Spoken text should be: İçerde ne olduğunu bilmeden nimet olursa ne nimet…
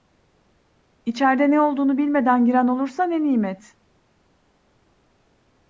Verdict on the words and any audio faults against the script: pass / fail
fail